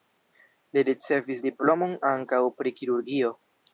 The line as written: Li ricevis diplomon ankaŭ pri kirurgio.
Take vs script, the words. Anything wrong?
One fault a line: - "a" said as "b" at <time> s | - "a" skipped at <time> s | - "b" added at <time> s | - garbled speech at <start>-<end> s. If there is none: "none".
none